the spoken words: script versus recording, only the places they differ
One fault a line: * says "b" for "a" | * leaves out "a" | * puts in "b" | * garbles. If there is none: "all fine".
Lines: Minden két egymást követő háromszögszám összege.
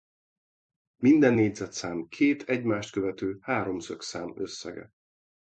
* puts in "négyzetszám"